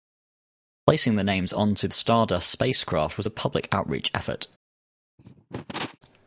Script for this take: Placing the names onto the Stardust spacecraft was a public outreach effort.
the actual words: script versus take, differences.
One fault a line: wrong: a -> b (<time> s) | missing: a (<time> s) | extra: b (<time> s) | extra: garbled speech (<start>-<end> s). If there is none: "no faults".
no faults